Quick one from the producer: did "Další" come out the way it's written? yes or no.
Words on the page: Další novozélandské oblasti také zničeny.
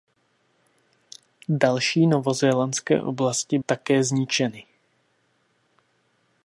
yes